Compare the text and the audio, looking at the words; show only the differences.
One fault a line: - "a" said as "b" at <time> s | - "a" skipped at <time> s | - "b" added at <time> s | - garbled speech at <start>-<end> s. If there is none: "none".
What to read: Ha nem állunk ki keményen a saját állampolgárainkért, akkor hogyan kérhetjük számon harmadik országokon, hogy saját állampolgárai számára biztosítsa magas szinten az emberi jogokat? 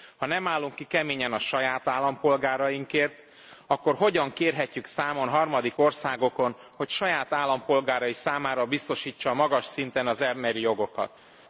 none